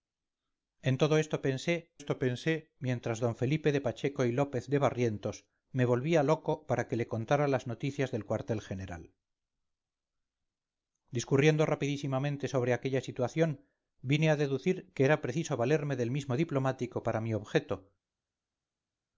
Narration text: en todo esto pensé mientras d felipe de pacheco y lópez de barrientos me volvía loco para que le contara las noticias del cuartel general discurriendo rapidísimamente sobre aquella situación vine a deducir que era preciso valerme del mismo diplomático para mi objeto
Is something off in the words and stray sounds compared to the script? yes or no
yes